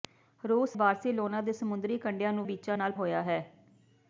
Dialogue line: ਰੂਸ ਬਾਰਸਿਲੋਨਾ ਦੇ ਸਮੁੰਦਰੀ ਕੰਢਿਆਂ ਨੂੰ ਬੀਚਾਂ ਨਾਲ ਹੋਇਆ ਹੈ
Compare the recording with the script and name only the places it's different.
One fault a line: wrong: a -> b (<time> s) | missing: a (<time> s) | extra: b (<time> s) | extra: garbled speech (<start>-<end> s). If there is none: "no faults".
no faults